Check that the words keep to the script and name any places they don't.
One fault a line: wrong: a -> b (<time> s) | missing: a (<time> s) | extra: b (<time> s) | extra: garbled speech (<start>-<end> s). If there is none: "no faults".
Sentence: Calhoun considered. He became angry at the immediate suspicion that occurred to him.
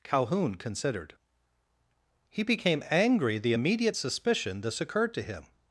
missing: at (3.4 s)
wrong: that -> this (4.6 s)